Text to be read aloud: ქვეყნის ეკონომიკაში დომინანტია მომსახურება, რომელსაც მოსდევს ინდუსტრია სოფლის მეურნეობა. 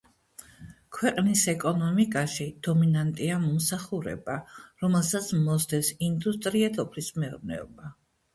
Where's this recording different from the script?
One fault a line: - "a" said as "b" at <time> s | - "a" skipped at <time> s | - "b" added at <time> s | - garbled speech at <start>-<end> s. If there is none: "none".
none